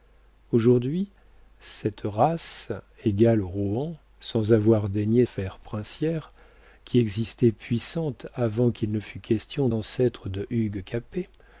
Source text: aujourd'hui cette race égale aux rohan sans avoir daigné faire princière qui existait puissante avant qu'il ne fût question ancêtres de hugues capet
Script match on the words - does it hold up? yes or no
yes